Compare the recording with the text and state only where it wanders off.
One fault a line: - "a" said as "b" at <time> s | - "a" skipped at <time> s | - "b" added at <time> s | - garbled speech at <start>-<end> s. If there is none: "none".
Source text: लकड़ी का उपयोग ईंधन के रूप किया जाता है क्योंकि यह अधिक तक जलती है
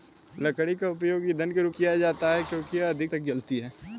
none